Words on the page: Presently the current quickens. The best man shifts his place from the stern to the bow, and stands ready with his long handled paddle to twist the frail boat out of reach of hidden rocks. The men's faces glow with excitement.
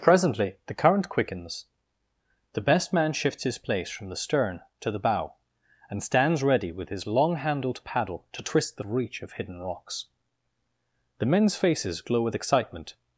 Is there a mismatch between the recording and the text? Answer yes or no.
yes